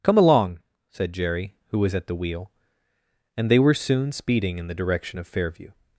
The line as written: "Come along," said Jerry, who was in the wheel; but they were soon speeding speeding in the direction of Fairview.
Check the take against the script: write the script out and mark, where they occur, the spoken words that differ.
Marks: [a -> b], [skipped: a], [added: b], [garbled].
"Come along," said Jerry, who was [in -> at] the wheel; [but -> and] they were soon speeding [skipped: speeding] in the direction of Fairview.